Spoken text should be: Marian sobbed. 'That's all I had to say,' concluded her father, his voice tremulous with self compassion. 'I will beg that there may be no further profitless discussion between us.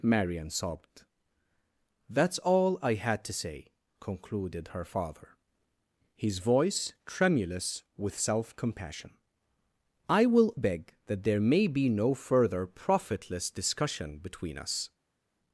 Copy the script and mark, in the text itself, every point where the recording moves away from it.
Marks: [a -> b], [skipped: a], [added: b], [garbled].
Marian sobbed. 'That's all I had to say,' concluded her father, his voice tremulous with self compassion. 'I will beg that there may be no further profitless discussion between us.